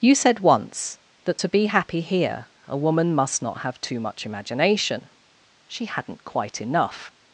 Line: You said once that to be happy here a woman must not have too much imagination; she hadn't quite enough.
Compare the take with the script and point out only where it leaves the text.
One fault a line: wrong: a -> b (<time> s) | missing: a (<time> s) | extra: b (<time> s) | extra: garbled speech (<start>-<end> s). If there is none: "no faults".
no faults